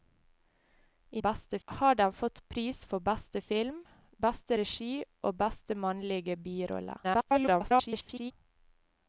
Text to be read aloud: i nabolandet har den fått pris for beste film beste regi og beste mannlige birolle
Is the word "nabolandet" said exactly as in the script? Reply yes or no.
no